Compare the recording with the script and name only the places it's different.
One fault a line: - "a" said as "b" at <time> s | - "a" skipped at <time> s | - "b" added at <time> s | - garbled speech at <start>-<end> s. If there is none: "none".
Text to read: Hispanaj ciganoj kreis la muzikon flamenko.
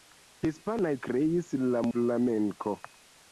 - "ciganoj" skipped at 0.9 s
- "muzikon" skipped at 1.8 s